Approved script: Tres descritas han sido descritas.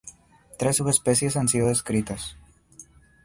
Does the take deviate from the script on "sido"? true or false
false